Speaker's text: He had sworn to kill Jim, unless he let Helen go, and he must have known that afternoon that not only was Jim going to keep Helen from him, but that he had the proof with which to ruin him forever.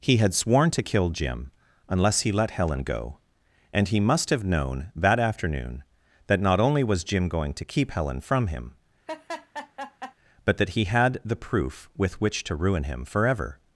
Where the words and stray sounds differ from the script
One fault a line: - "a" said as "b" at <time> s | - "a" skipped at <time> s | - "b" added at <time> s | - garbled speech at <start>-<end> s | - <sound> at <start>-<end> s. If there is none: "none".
- laugh at 9.1-10.1 s